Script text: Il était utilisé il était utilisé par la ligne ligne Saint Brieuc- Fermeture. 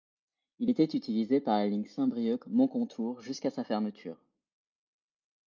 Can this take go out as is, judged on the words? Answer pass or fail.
fail